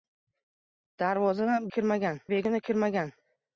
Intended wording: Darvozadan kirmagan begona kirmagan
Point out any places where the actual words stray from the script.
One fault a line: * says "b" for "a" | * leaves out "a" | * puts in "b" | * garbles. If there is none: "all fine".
all fine